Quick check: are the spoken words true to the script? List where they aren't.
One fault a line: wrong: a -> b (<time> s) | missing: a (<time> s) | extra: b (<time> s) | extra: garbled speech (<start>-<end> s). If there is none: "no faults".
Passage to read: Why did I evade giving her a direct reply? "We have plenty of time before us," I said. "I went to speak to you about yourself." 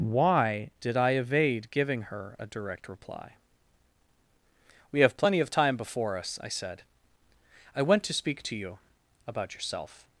no faults